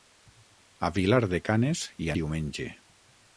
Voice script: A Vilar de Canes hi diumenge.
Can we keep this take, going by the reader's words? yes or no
yes